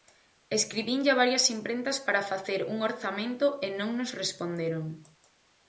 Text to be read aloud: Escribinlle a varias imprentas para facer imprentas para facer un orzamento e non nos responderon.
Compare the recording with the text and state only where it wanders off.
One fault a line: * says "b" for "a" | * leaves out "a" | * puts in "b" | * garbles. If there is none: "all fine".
* leaves out "imprentas para facer"